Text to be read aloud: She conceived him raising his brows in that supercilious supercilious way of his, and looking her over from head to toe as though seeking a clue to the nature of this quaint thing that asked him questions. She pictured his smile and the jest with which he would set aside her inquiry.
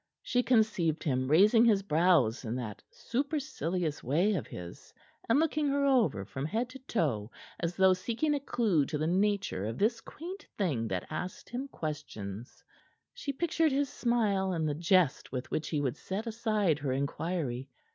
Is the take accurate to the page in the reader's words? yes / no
no